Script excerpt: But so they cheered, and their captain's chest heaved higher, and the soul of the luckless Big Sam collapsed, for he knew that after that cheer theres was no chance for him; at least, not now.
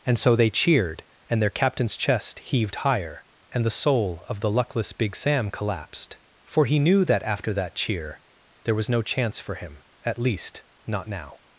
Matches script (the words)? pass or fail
fail